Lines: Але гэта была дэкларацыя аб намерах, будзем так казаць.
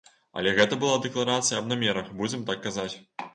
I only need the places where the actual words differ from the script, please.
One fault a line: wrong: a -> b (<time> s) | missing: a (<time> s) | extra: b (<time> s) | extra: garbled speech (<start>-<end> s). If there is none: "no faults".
no faults